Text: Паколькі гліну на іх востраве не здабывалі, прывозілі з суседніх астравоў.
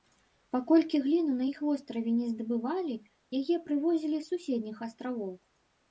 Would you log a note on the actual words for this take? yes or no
yes